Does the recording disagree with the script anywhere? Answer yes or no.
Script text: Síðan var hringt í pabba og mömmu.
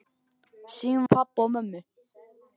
yes